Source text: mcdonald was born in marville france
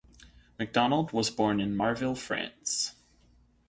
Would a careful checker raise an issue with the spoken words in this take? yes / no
no